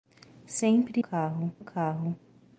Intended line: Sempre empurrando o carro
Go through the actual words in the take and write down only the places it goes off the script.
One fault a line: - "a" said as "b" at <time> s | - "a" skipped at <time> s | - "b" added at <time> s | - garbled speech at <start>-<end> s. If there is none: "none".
- "empurrando" said as "carro" at 1.0 s